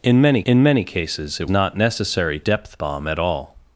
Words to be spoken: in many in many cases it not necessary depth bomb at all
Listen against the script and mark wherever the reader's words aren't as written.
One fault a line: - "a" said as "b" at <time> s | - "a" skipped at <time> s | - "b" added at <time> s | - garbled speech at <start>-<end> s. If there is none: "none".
none